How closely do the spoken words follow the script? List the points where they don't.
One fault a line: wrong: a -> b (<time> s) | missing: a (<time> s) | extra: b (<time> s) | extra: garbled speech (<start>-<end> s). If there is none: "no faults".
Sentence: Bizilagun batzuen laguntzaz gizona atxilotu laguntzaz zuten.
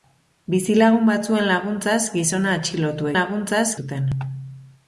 no faults